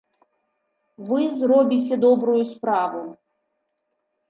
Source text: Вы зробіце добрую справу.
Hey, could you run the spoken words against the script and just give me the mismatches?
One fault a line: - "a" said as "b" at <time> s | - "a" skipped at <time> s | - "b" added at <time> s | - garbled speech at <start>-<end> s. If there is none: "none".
none